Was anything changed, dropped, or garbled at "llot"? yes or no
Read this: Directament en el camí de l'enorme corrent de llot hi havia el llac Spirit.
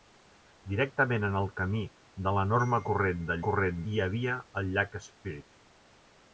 yes